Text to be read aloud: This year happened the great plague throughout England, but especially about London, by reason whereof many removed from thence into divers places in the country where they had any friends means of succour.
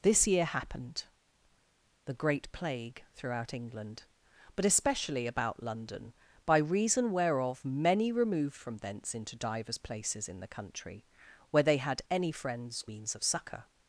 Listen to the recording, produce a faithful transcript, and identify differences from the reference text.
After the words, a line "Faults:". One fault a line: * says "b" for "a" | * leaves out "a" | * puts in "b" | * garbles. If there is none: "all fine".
This year happened the great plague throughout England, but especially about London, by reason whereof many removed from thence into divers places in the country where they had any friends means of succour.
Faults:
all fine